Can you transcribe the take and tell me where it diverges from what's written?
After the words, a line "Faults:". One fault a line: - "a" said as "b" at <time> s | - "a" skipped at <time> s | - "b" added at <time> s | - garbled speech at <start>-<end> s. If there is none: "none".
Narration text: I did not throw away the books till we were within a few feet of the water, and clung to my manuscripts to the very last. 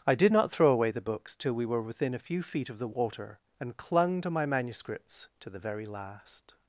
I did not throw away the books till we were within a few feet of the water, and clung to my manuscripts to the very last.
Faults:
none